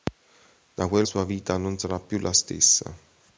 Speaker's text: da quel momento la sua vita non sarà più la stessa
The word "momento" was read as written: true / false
false